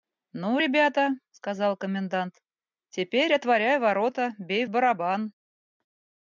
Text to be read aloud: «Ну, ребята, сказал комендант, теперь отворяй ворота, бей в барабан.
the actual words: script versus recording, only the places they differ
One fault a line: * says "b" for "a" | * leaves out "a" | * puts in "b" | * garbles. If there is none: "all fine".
all fine